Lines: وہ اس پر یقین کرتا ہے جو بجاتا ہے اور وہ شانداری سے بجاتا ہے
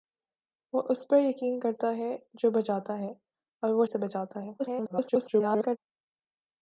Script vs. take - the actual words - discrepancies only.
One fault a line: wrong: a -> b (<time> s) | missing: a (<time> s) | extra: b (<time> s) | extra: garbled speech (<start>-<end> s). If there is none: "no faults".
missing: شانداری (3.9 s)
extra: garbled speech (4.6-5.8 s)